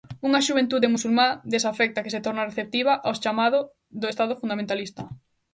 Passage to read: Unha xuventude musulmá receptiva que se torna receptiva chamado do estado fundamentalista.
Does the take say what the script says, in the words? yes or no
no